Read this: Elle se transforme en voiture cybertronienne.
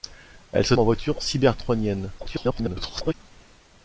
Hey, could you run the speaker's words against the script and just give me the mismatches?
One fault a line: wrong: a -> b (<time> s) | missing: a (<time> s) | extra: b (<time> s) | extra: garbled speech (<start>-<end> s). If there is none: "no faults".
missing: transforme (0.7 s)
extra: garbled speech (2.2-3.1 s)